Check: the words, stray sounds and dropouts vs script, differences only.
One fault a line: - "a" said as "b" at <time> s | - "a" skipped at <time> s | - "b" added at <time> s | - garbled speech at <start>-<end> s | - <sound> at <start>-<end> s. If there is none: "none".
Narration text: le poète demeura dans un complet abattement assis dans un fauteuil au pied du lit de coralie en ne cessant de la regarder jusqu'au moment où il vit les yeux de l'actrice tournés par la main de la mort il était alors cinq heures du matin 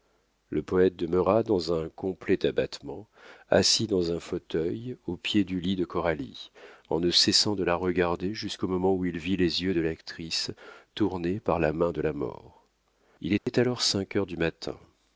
- dropout at 13.4-13.5 s